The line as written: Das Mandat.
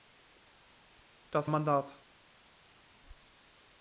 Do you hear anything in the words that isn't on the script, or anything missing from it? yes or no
no